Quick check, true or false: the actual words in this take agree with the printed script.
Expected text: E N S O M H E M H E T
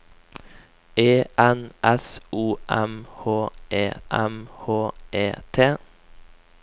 true